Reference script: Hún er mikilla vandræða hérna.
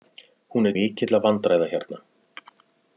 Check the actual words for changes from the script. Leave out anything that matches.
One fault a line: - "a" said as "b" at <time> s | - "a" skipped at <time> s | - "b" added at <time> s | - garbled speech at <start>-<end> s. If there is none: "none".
none